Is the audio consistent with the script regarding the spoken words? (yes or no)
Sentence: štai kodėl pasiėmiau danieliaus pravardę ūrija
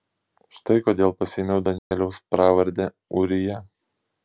yes